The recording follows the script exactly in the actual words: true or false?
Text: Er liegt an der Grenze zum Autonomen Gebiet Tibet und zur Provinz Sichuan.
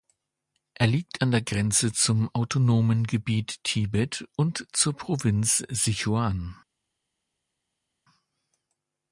true